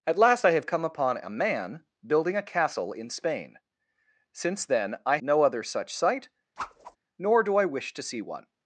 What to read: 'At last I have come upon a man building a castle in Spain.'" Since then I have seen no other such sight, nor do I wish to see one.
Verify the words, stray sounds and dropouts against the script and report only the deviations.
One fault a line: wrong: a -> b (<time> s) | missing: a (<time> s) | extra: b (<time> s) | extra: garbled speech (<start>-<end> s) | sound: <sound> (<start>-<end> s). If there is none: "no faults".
missing: have seen (5.2 s)
sound: whoosh (6.6-7.0 s)